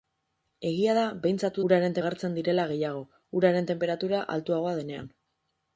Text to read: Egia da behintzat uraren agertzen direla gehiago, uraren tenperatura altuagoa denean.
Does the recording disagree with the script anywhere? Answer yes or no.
no